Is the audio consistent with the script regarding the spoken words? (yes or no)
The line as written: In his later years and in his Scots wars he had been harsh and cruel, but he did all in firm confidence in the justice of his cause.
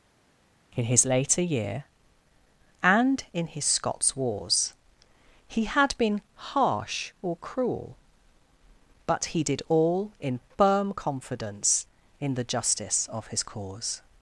no